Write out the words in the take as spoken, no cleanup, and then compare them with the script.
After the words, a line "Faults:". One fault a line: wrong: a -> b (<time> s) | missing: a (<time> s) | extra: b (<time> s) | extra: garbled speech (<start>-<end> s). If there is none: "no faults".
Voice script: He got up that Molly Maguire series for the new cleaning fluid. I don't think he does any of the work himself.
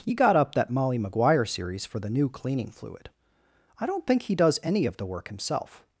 He got up that Molly Maguire series for the new cleaning fluid. I don't think he does any of the work himself.
Faults:
no faults